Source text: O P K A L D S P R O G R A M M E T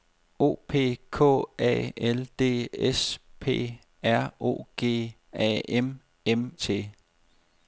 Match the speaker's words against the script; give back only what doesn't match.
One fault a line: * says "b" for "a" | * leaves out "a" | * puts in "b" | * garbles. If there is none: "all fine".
* leaves out "R"
* leaves out "E"